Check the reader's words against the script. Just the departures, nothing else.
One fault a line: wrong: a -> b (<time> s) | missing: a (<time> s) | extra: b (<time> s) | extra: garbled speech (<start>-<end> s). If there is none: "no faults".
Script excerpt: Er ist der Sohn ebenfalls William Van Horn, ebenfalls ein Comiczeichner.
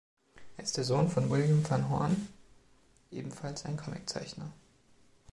wrong: ebenfalls -> von (1.1 s)